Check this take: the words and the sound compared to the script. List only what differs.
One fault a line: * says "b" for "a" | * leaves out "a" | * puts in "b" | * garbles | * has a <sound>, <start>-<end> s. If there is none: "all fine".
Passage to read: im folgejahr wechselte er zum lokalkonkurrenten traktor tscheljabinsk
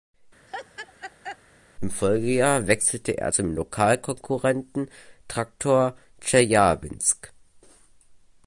* has a laugh, 0.5-1.4 s